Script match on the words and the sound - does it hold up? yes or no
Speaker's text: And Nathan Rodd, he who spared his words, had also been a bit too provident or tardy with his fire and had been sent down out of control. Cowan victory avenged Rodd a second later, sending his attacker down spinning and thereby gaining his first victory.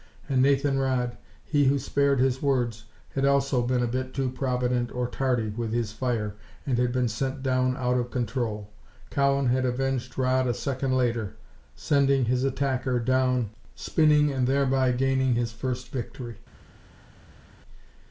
no